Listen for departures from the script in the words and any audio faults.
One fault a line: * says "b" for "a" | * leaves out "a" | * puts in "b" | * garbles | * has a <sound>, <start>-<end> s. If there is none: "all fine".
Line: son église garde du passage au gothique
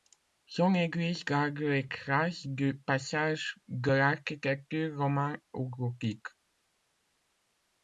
* puts in "les traces"
* puts in "de l'architecture romane"